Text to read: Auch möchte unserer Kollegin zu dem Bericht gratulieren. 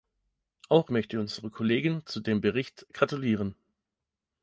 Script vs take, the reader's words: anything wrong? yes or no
no